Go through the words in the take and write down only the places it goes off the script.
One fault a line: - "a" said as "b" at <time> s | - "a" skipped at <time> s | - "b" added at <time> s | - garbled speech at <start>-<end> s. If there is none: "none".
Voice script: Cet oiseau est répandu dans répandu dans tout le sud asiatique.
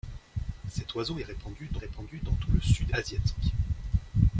none